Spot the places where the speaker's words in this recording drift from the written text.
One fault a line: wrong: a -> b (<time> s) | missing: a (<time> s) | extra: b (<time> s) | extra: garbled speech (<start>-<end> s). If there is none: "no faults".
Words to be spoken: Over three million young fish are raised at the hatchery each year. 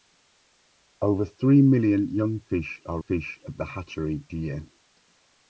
wrong: raised -> fish (3.0 s)
missing: each (4.2 s)